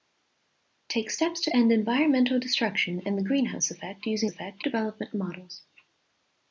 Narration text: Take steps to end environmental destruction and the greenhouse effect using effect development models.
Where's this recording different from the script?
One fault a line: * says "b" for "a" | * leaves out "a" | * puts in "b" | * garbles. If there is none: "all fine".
all fine